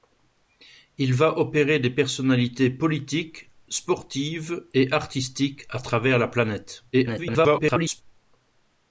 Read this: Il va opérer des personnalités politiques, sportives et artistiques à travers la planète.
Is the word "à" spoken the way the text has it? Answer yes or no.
yes